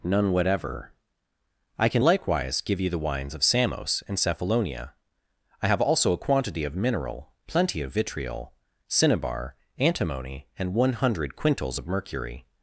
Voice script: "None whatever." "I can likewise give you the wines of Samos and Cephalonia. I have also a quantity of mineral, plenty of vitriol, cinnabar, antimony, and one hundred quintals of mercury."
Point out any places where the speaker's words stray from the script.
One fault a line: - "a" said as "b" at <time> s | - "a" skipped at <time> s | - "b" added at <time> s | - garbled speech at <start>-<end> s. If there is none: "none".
none